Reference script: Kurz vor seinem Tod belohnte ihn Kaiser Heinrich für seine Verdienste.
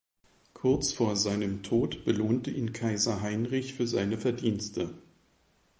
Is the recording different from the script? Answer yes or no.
no